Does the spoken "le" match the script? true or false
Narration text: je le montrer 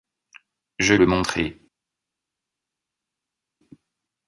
true